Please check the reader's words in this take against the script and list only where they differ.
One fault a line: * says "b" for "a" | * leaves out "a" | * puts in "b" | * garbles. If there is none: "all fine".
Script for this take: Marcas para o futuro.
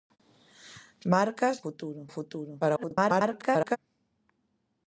* says "futuro" for "para"
* garbles